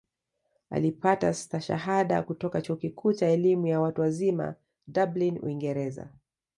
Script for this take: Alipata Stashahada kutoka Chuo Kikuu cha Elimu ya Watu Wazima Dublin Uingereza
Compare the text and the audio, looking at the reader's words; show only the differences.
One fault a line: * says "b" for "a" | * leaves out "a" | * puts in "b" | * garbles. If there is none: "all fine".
all fine